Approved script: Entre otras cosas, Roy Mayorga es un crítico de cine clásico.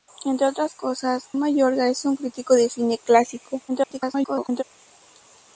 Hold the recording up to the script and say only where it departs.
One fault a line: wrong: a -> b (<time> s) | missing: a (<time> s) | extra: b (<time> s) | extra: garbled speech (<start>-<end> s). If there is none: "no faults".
missing: Roy (1.2 s)
extra: garbled speech (3.7-4.6 s)